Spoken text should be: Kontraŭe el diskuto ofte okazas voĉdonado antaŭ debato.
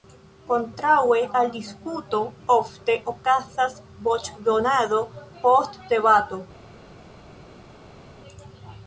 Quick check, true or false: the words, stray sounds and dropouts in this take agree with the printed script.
false